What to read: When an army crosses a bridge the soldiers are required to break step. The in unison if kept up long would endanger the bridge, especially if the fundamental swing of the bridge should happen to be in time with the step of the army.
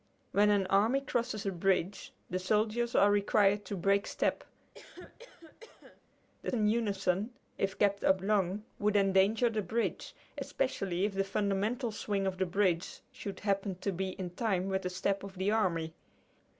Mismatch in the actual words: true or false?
false